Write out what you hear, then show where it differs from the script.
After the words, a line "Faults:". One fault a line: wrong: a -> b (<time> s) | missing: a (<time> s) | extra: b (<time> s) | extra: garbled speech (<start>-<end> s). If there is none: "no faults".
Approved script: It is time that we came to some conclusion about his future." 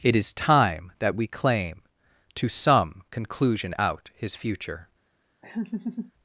It is time that we claim to some conclusion out his future."
Faults:
wrong: came -> claim (1.3 s)
wrong: about -> out (3.8 s)